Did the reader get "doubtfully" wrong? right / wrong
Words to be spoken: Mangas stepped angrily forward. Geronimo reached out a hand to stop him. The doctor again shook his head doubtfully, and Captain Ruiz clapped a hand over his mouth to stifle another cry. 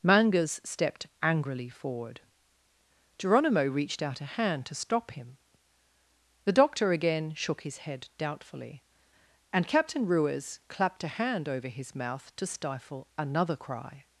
right